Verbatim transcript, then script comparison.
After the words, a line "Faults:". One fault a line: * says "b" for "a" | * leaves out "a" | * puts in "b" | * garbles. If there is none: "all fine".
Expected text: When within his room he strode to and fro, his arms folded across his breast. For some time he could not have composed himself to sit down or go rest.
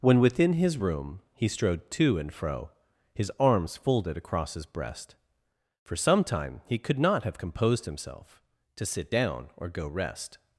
When within his room he strode to and fro, his arms folded across his breast. For some time he could not have composed himself to sit down or go rest.
Faults:
all fine